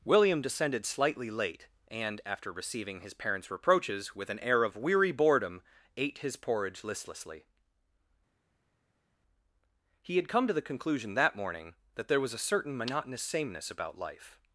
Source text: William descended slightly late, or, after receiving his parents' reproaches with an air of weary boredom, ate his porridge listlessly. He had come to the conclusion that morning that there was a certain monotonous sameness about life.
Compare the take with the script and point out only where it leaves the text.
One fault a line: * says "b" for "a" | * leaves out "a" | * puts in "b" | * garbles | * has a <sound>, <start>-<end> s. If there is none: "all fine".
* says "and" for "or"